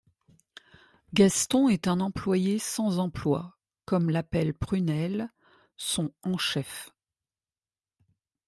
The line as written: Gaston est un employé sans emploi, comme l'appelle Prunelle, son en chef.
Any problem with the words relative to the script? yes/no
no